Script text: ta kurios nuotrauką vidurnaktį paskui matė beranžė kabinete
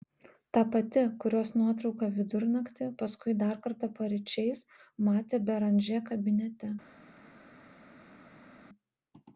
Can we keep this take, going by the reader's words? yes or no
no